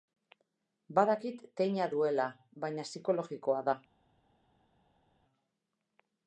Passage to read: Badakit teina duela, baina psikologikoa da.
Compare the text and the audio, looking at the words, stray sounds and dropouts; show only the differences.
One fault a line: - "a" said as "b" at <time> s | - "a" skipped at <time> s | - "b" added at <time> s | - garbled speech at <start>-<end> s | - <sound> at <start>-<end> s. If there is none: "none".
none